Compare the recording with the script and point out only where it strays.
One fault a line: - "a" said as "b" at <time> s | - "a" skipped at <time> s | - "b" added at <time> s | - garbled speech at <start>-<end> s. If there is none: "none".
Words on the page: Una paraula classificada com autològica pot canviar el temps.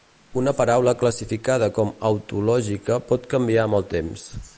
- "amb" added at 3.7 s